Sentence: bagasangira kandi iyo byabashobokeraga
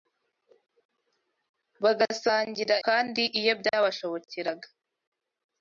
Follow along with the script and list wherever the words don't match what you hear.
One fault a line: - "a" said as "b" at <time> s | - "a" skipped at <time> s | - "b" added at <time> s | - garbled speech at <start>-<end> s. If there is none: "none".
none